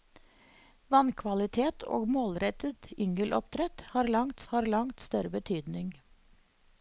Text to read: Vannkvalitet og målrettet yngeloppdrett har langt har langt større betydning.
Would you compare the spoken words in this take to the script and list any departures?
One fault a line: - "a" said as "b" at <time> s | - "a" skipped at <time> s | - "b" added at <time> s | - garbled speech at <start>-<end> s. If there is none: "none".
none